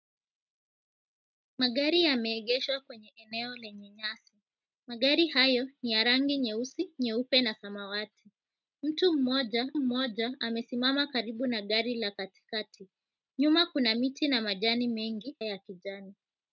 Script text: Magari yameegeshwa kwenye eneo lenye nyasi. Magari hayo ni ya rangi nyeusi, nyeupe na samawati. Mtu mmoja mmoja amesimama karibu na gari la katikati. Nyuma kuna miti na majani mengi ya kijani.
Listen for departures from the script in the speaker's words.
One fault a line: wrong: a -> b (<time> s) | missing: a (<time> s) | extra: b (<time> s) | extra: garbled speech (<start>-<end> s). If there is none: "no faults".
no faults